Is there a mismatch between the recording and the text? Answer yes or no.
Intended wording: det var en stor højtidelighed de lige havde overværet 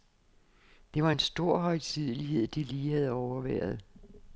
no